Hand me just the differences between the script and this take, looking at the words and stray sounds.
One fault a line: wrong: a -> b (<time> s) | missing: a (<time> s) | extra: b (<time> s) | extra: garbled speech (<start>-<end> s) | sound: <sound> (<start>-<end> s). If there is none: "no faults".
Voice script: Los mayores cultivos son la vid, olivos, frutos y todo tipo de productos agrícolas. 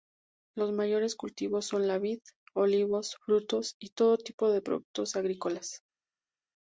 no faults